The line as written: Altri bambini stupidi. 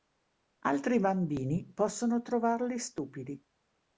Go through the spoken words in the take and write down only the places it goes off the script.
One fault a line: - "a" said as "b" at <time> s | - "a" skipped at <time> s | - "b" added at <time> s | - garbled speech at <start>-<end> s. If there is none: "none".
- "possono trovarli" added at 1.7 s